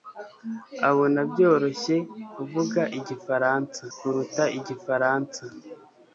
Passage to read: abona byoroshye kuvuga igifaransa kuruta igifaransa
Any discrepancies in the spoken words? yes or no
no